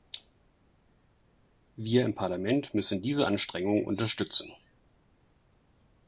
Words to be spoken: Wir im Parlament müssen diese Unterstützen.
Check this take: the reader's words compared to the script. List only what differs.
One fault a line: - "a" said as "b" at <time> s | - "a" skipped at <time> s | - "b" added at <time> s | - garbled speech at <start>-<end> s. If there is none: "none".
- "Anstrengungen" added at 3.3 s